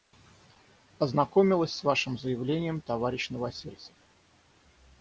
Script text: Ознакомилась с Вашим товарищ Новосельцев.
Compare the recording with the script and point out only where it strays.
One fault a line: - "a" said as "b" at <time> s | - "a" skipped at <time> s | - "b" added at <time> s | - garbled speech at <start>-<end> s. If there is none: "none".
- "заявлением" added at 2.2 s